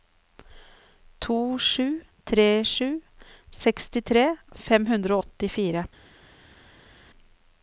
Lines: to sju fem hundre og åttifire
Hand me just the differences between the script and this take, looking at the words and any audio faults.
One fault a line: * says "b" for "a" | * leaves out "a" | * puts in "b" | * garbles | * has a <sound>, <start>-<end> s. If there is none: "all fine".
* puts in "tre sju sekstitre"